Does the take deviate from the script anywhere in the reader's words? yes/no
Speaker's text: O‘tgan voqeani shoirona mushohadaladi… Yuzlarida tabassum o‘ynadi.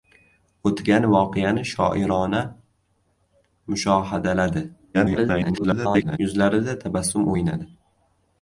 yes